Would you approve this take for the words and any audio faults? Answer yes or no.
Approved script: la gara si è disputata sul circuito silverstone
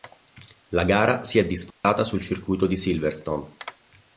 no